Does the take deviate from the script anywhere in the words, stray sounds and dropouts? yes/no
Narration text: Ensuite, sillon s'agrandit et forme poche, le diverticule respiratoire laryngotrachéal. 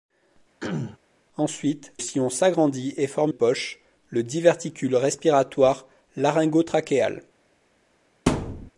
yes